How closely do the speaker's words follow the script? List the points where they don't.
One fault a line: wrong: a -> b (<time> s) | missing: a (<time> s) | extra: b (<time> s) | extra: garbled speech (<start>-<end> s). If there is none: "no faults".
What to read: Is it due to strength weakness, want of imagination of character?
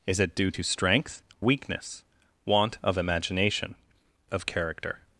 no faults